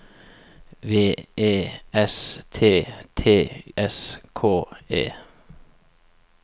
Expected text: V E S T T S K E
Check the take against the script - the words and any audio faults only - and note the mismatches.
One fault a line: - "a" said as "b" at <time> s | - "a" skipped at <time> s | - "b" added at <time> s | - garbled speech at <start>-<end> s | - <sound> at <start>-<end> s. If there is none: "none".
none